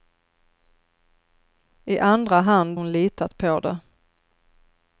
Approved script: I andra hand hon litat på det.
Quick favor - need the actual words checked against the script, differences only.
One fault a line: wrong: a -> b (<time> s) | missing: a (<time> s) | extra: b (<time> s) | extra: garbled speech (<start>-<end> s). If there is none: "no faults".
no faults